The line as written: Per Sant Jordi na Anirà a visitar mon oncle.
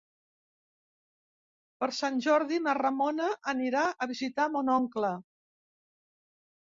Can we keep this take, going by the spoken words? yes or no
no